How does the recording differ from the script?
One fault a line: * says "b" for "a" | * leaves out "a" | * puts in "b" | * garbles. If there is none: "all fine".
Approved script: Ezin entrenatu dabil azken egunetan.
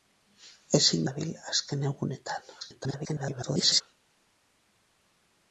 * leaves out "entrenatu"
* garbles